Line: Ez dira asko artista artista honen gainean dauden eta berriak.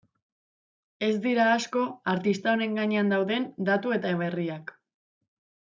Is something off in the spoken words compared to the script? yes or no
yes